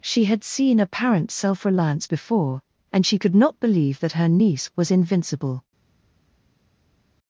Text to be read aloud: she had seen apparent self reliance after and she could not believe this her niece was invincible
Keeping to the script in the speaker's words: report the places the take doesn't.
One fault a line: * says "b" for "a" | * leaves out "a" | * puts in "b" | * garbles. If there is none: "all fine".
* says "before" for "after"
* says "that" for "this"